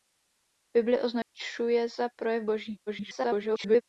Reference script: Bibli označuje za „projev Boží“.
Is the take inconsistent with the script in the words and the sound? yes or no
yes